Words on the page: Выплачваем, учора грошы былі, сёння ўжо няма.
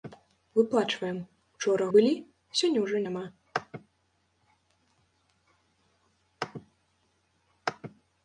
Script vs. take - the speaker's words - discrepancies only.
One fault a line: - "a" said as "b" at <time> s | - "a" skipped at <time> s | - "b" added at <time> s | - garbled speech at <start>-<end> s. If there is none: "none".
- "грошы" skipped at 1.9 s